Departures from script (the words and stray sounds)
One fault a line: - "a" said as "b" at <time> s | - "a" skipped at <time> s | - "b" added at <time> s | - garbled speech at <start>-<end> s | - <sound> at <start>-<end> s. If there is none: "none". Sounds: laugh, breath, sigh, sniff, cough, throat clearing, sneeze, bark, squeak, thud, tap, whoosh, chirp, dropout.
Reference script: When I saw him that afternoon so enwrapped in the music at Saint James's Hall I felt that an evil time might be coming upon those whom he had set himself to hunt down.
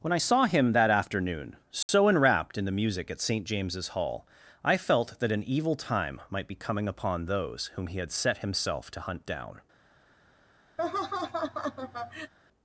- dropout at 1.8-1.9 s
- laugh at 10.8-12.3 s